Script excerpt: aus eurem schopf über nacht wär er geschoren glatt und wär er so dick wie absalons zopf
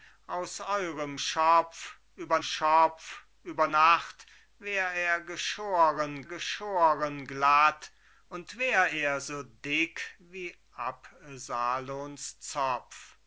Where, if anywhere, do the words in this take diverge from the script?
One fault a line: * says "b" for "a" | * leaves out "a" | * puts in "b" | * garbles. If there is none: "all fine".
* puts in "schopf über"
* puts in "geschoren"